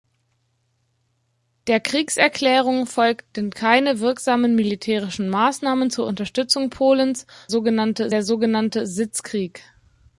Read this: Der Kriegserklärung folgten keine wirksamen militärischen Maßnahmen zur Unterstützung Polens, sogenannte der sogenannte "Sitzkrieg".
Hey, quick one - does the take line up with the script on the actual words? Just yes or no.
yes